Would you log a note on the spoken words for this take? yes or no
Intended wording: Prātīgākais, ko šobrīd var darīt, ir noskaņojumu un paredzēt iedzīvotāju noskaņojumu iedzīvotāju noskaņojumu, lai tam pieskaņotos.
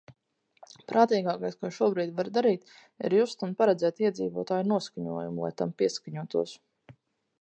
yes